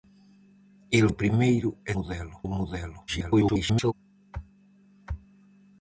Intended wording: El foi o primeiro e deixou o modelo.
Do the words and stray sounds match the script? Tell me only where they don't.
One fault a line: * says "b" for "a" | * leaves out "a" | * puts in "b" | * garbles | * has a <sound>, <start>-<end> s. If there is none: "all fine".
* leaves out "foi"
* says "modelo" for "deixou"
* garbles